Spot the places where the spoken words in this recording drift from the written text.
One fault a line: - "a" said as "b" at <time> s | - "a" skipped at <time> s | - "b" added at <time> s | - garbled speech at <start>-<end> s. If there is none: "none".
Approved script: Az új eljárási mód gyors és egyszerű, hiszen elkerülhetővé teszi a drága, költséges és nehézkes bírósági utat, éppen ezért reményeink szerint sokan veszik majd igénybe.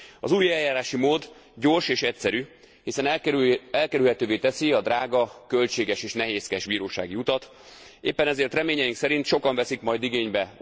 none